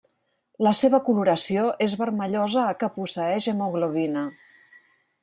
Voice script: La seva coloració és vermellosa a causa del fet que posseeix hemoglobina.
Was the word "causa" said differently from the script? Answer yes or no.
yes